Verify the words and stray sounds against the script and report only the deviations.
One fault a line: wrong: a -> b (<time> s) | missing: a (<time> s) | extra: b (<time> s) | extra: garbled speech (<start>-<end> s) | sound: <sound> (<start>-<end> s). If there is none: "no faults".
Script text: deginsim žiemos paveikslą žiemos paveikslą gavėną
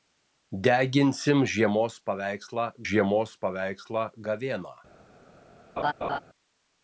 sound: laugh (5.8-6.2 s)